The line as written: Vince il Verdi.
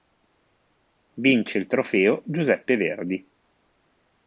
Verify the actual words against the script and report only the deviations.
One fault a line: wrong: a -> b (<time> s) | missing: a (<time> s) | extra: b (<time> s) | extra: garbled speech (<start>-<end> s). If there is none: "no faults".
extra: Trofeo Giuseppe (1.7 s)